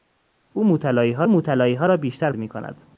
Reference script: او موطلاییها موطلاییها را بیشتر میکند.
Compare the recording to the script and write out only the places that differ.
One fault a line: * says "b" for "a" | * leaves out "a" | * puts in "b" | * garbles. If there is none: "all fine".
all fine